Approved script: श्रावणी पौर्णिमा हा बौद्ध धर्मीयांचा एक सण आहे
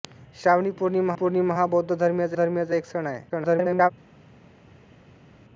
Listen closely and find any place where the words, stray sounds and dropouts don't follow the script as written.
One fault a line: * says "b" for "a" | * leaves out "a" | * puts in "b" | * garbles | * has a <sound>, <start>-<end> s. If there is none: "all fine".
* puts in "पौर्णिमा"
* puts in "धर्मीयांचा"
* garbles